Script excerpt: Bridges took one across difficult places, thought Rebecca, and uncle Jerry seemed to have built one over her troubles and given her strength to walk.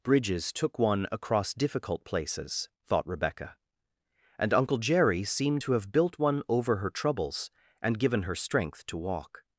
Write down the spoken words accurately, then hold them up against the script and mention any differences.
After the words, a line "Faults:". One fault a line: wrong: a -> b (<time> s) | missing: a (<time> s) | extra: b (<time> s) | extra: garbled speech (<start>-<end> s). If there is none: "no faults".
Bridges took one across difficult places, thought Rebecca, and uncle Jerry seemed to have built one over her troubles and given her strength to walk.
Faults:
no faults